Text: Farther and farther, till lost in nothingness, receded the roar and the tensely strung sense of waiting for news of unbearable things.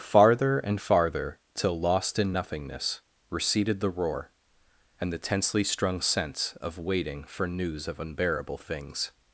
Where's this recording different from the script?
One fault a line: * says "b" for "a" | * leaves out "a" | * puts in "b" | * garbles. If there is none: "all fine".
all fine